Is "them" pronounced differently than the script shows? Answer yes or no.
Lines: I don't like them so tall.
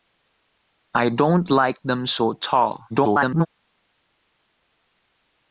no